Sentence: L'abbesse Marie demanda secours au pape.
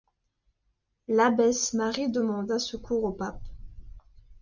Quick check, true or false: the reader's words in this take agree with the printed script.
true